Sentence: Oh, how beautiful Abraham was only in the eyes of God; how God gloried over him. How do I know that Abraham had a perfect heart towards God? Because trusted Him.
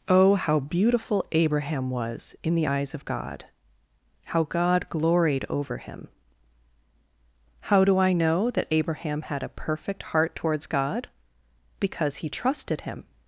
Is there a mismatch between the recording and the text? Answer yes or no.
yes